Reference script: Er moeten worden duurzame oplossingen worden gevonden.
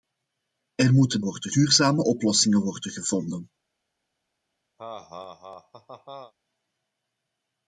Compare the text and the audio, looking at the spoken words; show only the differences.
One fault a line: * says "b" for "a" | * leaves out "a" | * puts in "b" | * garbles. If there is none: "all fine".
all fine